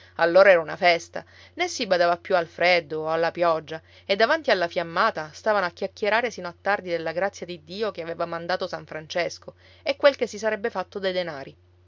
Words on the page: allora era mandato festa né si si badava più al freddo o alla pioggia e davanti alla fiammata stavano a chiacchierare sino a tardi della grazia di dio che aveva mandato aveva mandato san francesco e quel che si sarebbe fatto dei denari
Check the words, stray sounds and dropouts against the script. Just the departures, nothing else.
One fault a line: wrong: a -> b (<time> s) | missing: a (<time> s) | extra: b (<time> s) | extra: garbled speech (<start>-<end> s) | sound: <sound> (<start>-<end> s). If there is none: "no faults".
wrong: mandato -> una (0.6 s)
missing: si (1.9 s)
missing: aveva mandato (8.7 s)